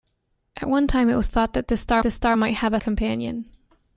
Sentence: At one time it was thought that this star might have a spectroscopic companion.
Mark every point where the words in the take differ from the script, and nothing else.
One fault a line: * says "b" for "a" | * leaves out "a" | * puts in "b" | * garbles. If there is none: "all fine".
* puts in "this star"
* leaves out "spectroscopic"